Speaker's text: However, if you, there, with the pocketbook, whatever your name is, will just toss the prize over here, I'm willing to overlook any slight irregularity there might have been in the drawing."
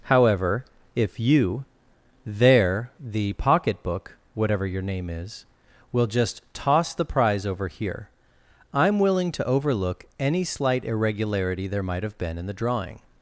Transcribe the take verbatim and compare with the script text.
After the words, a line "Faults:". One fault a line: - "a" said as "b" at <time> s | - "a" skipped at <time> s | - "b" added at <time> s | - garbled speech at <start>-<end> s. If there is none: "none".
However, if you, there, the pocketbook, whatever your name is, will just toss the prize over here, I'm willing to overlook any slight irregularity there might have been in the drawing."
Faults:
- "with" skipped at 2.9 s